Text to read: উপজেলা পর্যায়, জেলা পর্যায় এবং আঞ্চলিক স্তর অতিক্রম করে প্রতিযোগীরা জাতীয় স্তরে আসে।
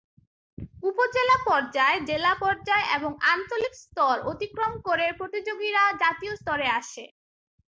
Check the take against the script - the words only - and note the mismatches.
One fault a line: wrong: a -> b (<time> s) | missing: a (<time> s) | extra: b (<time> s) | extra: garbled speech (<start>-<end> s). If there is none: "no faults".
no faults